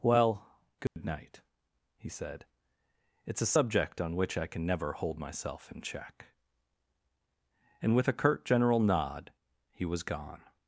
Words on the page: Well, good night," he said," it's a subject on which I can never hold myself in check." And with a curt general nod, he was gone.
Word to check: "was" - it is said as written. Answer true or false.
true